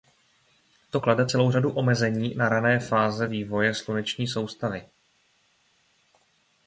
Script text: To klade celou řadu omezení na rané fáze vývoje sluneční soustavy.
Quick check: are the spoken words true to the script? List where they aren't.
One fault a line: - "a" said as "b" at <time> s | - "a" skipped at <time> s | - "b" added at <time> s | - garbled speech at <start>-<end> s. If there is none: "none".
none